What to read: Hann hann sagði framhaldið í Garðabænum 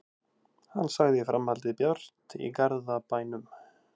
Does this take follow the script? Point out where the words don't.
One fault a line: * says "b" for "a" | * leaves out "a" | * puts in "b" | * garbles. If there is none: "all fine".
* leaves out "hann"
* puts in "bjart"